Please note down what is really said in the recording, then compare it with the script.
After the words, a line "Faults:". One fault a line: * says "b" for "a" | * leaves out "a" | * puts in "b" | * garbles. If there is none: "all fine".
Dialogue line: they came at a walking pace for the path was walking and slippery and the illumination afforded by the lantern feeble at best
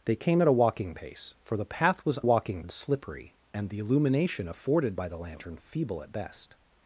they came at a walking pace for the path was walking and slippery and the illumination afforded by the lantern feeble at best
Faults:
all fine